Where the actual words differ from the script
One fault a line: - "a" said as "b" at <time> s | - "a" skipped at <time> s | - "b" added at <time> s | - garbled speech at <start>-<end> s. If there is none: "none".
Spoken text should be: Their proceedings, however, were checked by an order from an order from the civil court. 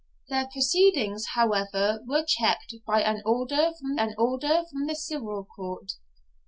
none